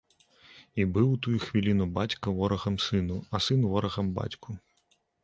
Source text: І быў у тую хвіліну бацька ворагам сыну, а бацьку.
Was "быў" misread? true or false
false